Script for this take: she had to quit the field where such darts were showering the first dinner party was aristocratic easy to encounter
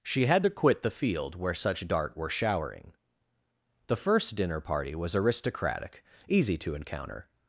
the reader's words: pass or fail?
fail